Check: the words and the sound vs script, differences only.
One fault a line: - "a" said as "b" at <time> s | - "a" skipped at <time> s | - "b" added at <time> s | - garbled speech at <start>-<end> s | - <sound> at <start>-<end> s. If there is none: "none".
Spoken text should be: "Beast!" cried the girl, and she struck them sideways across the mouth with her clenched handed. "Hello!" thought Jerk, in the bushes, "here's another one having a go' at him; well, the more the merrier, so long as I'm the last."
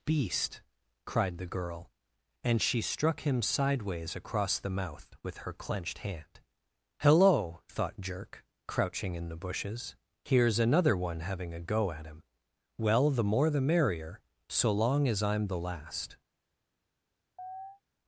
- "them" said as "him" at 3.2 s
- "handed" said as "hand" at 6.0 s
- "crouching" added at 8.7 s
- chirp at 17.4-17.8 s